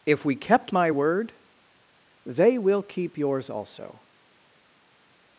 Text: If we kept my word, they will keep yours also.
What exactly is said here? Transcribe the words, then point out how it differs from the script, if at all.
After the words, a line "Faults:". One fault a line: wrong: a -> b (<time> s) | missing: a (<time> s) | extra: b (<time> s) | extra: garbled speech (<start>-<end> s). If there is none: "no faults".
If we kept my word, they will keep yours also.
Faults:
no faults